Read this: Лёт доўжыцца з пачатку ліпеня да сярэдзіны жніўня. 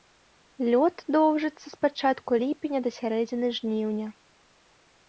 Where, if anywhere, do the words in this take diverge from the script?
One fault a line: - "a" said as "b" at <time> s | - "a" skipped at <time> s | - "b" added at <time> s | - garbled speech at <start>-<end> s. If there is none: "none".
none